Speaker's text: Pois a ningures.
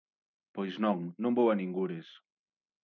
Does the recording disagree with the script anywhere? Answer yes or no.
yes